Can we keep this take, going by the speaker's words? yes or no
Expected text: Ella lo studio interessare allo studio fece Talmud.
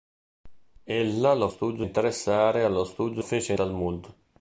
yes